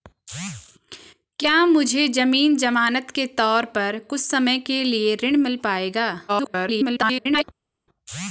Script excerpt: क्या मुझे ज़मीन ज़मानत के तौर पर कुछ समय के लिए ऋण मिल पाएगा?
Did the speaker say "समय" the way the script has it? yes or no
yes